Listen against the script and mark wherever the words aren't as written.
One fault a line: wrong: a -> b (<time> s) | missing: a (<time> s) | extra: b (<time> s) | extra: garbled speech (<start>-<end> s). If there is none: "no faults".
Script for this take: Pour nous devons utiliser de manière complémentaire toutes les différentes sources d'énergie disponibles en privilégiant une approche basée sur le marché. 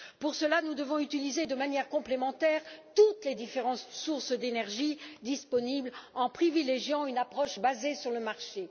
extra: cela (0.3 s)